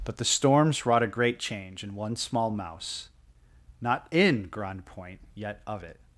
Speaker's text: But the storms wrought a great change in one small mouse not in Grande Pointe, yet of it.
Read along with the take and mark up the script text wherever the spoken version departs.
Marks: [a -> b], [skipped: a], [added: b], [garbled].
But the storms wrought a great change in one small mouse not in Grande Pointe, yet of it.